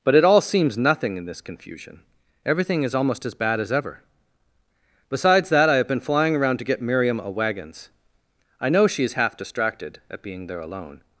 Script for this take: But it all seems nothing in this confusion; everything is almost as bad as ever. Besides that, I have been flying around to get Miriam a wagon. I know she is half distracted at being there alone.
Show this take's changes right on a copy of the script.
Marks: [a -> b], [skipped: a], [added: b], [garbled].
But it all seems nothing in this confusion; everything is almost as bad as ever. Besides that, I have been flying around to get Miriam a [wagon. -> wagons] I know she is half distracted at being there alone.